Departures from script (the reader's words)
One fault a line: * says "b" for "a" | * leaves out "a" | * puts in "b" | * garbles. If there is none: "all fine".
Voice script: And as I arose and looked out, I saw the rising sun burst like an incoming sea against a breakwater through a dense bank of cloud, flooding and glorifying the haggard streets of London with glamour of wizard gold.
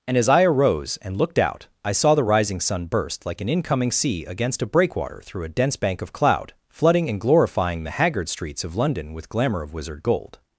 all fine